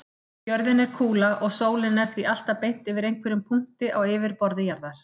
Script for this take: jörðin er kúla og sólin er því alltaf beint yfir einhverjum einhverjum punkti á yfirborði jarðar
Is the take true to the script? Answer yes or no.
no